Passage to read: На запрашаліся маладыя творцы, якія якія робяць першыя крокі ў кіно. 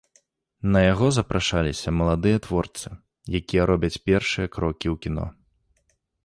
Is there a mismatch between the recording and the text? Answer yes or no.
yes